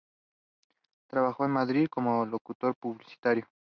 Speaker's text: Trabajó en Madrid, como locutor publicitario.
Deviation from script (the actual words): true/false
false